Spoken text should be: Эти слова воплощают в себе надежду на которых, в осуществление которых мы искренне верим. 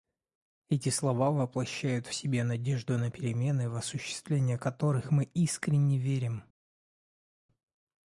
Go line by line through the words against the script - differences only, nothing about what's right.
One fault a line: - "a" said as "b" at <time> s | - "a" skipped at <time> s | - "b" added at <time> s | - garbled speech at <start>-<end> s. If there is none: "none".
- "которых" said as "перемены" at 3.1 s